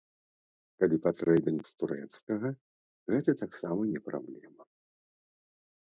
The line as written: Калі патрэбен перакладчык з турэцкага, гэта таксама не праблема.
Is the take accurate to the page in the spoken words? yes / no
no